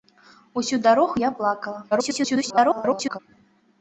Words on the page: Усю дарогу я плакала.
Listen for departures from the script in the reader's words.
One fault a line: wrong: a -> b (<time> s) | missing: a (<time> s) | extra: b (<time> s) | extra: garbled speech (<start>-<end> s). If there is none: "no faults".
extra: garbled speech (1.9-3.2 s)